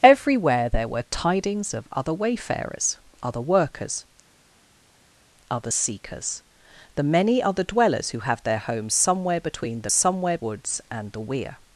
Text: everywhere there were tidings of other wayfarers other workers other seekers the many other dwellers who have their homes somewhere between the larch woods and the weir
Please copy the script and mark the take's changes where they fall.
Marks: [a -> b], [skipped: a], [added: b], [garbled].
everywhere there were tidings of other wayfarers other workers other seekers the many other dwellers who have their homes somewhere between the [larch -> somewhere] woods and the weir